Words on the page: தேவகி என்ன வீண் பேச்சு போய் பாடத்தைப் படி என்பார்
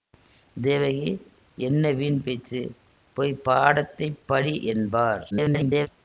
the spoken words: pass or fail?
fail